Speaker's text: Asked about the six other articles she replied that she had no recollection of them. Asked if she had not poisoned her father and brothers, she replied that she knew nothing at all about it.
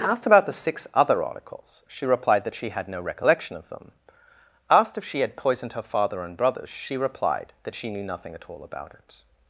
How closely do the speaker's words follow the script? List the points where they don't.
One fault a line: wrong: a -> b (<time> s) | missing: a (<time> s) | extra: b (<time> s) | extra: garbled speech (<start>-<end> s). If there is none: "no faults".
missing: not (5.4 s)